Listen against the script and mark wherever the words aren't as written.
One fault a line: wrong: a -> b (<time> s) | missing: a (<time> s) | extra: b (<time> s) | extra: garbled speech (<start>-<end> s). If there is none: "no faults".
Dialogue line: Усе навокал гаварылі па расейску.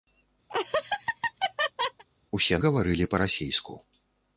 missing: навокал (2.6 s)